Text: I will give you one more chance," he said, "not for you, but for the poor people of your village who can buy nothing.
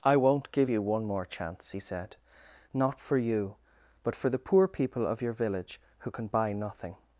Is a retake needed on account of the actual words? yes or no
yes